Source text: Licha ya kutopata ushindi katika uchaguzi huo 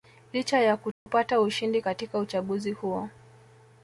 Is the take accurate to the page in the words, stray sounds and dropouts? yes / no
no